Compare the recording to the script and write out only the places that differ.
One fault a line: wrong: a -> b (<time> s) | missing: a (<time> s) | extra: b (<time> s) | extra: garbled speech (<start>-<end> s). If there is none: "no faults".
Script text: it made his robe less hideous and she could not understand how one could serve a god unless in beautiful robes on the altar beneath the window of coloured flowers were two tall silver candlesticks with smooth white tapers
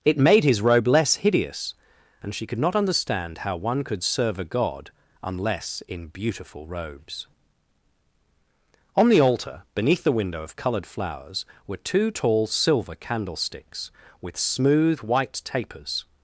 no faults